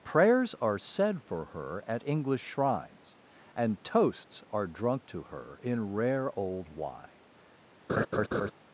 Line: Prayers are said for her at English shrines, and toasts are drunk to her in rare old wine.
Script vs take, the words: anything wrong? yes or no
no